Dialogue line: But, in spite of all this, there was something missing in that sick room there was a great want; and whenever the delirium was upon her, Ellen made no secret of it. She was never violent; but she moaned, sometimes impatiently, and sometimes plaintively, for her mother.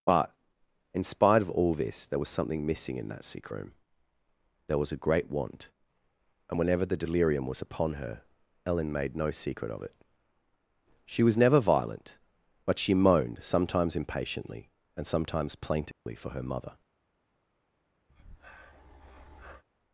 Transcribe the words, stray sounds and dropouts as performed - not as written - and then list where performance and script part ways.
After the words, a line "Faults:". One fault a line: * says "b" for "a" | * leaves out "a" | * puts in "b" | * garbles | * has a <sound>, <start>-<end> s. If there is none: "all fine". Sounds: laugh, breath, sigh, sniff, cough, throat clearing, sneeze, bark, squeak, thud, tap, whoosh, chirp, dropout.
But, in spite of all this, there was something missing in that sick room there was a great want; and whenever the delirium was upon her, Ellen made no secret of it. She was never violent; but she moaned, sometimes impatiently, and sometimes plaintively, for her mother.
Faults:
* has a dropout, 15.9-16.1 s
* has a breath, 18.1-19.6 s